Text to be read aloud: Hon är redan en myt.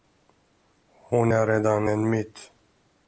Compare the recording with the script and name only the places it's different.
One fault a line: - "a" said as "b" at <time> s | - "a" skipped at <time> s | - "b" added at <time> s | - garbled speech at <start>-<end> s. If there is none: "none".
none